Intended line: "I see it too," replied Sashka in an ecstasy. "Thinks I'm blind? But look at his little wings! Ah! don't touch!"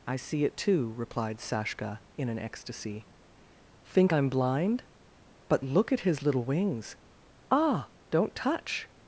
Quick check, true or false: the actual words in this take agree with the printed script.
false